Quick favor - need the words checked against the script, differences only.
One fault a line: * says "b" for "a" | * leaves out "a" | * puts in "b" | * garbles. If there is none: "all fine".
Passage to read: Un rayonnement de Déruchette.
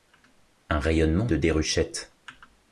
all fine